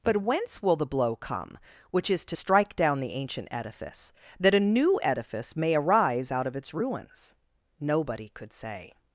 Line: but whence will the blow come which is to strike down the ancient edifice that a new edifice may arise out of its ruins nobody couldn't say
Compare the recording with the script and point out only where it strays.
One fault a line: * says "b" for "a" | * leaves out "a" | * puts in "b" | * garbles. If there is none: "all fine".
* says "could" for "couldn't"